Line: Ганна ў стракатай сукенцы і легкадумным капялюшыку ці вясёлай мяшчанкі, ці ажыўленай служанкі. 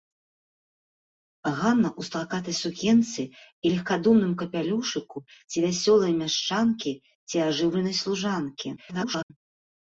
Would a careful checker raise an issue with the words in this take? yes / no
yes